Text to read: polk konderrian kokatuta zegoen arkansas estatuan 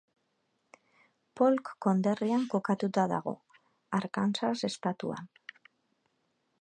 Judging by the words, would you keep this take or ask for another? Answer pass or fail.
fail